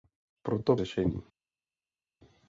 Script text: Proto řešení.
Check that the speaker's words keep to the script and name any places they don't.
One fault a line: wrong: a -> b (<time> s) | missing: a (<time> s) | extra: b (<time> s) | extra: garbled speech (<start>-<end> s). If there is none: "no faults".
no faults